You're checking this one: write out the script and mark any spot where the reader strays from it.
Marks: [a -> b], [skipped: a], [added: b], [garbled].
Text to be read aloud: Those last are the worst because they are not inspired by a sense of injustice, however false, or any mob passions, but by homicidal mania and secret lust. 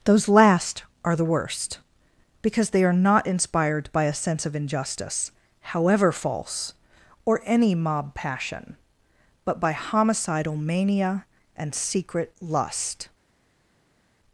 Those last are the worst because they are not inspired by a sense of injustice, however false, or any mob [passions, -> passion] but by homicidal mania and secret lust.